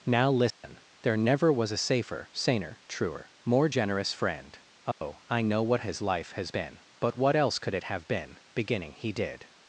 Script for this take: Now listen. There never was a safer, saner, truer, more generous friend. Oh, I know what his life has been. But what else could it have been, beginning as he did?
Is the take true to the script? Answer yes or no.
no